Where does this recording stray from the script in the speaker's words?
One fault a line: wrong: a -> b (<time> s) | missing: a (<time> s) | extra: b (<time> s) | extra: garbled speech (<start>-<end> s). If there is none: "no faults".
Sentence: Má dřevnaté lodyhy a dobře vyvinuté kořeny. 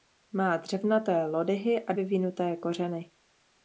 missing: dobře (1.9 s)